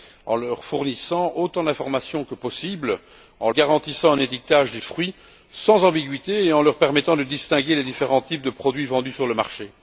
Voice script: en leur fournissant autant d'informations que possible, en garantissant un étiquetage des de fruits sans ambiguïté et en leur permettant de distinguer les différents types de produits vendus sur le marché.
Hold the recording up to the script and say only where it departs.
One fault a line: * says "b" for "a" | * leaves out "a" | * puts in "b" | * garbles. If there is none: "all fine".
all fine